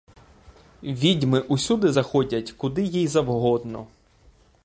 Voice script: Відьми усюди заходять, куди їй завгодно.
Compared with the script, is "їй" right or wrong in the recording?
right